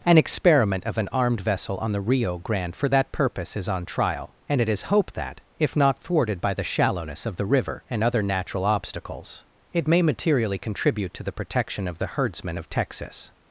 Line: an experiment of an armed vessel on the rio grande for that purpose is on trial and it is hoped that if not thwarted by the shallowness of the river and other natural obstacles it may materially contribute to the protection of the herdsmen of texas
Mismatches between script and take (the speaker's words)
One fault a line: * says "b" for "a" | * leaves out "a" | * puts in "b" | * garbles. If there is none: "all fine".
all fine